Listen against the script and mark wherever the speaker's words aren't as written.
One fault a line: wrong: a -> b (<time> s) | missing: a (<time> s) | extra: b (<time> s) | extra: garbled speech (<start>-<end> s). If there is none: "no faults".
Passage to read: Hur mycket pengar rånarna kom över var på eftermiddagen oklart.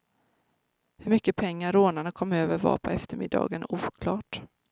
no faults